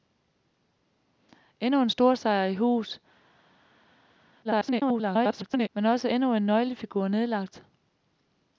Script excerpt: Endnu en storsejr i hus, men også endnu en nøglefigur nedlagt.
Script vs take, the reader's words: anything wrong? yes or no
yes